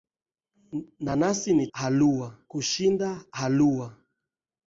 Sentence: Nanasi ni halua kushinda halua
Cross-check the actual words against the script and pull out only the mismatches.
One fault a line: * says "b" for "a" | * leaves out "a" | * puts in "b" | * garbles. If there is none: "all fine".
all fine